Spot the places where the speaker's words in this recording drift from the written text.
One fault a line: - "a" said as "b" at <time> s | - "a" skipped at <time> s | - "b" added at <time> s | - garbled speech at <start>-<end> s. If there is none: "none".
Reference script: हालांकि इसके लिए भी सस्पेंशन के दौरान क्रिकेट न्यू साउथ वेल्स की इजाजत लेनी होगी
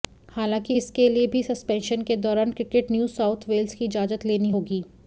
none